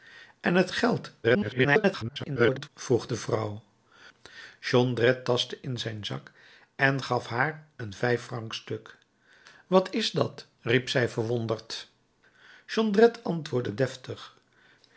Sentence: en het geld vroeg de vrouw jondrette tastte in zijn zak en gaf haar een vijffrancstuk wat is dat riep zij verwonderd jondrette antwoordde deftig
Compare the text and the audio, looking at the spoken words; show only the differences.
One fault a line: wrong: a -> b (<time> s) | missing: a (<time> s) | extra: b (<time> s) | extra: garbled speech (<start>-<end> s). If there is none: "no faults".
extra: garbled speech (1.2-2.7 s)